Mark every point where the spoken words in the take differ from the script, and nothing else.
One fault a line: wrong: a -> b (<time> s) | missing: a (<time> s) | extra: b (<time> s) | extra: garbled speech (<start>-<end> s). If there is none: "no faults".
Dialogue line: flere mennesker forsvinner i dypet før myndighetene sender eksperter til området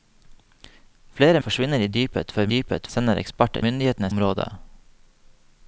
missing: mennesker (1.4 s)
wrong: myndighetene -> dypet (2.5 s)
wrong: til -> myndighetene (3.7 s)